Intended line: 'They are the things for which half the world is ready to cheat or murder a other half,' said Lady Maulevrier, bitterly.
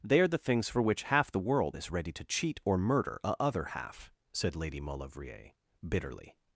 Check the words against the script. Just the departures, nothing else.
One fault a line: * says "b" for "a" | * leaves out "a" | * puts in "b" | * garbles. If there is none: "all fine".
all fine